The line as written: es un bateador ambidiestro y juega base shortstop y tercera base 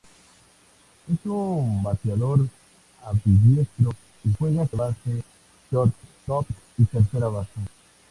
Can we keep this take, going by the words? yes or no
yes